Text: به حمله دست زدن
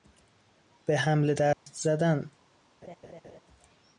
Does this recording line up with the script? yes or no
yes